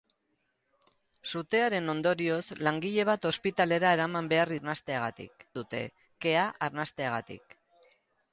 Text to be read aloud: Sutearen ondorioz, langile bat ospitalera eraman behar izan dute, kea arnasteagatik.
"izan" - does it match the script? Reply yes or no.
no